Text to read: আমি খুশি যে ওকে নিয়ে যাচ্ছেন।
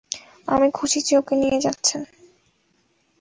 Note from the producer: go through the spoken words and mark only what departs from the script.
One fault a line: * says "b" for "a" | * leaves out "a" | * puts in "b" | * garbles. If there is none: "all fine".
all fine